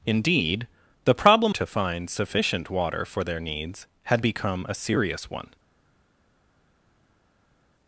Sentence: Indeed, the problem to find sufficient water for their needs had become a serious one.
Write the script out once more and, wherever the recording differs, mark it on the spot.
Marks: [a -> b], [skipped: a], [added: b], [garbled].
Indeed, the problem to find sufficient water for their needs had become a serious one.